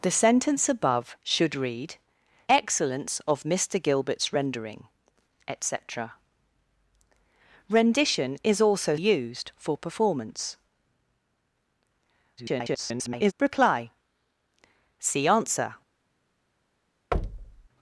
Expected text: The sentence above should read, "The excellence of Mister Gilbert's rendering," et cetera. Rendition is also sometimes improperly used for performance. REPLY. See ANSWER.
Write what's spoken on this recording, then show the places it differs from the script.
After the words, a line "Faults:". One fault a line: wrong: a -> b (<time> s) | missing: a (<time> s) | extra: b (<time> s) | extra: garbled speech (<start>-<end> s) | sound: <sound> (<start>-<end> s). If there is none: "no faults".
The sentence above should read, "Excellence of Mister Gilbert's rendering," et cetera. Rendition is also used for performance. [garbled] REPLY. See ANSWER.
Faults:
missing: The (2.0 s)
missing: sometimes improperly (9.0 s)
extra: garbled speech (12.4-13.3 s)
sound: thud (17.1-17.7 s)